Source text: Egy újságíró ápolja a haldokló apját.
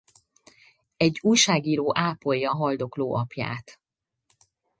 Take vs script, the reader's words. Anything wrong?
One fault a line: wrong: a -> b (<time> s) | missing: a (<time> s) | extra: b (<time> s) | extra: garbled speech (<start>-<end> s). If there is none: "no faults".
no faults